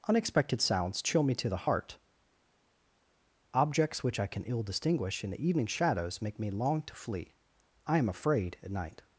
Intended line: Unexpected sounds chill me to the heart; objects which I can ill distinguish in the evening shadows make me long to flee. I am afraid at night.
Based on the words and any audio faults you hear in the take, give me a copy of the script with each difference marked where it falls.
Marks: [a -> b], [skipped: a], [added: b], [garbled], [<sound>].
Unexpected sounds chill me to the heart; objects which I can ill distinguish in the evening shadows make me long to flee. I am afraid at night.